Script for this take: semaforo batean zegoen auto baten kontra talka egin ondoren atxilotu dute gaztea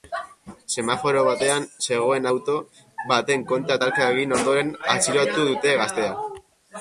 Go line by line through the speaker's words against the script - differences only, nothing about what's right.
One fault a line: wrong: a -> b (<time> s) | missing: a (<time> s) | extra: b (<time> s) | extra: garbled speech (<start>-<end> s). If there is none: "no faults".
no faults